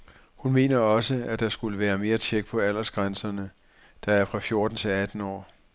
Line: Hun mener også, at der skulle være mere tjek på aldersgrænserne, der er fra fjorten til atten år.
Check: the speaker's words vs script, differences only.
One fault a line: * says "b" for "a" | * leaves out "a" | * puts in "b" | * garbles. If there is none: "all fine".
all fine